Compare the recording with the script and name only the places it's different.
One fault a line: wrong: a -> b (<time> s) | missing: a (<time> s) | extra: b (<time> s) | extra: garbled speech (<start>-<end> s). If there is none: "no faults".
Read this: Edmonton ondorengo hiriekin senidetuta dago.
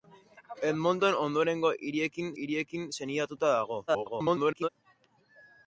extra: hiriekin (2.4 s)
extra: garbled speech (3.9-4.7 s)